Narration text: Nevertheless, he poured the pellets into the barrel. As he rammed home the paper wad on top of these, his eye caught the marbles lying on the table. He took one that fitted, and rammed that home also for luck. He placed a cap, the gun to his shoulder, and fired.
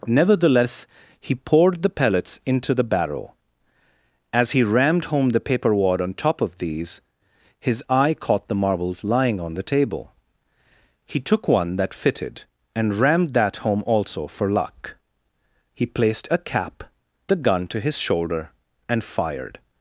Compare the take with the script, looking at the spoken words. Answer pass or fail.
pass